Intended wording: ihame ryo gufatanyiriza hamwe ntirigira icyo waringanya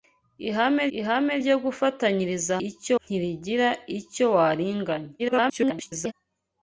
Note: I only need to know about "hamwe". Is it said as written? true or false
false